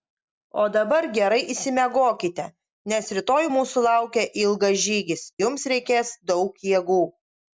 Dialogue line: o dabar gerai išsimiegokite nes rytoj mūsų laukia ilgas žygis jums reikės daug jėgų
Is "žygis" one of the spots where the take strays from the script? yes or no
no